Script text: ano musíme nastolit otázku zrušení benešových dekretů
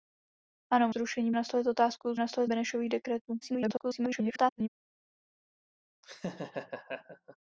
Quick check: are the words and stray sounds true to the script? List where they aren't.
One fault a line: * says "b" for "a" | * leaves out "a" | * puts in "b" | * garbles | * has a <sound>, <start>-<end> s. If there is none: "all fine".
* says "zrušení" for "musíme"
* says "nastolit" for "zrušení"
* garbles
* has a laugh, 6.0-7.4 s